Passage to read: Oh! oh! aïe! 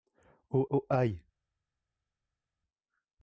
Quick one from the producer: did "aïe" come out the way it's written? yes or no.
yes